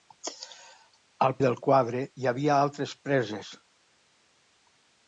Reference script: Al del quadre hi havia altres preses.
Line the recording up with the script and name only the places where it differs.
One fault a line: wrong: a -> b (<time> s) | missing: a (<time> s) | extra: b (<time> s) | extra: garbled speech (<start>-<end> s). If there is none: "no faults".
no faults